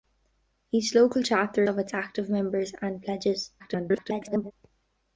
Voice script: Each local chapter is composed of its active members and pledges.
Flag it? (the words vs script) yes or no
yes